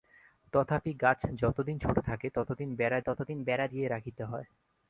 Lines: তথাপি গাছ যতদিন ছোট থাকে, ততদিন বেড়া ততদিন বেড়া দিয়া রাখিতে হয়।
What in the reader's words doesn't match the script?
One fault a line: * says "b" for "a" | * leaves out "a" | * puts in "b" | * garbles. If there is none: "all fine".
all fine